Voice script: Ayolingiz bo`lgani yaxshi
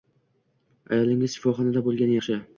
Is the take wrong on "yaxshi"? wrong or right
right